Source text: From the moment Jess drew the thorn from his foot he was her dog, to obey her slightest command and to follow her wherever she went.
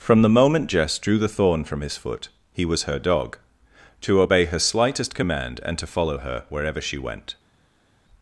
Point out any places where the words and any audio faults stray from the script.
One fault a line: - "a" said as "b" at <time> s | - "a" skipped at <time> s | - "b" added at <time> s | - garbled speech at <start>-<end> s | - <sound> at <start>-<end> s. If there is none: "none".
none